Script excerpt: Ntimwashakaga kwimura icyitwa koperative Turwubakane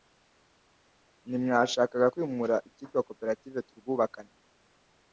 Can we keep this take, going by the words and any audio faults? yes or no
yes